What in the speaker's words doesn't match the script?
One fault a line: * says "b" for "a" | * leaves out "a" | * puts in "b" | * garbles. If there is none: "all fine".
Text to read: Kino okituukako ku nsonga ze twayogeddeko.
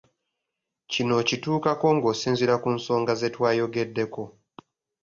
* puts in "ng'osinziira"